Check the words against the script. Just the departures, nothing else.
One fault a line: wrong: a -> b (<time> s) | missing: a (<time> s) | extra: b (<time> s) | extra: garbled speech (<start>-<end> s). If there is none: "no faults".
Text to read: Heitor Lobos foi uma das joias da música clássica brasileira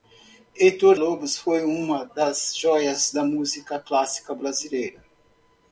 no faults